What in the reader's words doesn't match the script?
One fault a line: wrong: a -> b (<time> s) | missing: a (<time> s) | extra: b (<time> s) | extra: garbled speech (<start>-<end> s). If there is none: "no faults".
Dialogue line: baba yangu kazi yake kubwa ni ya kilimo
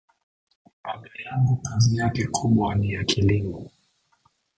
no faults